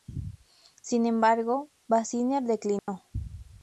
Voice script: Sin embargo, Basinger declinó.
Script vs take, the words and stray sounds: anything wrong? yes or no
yes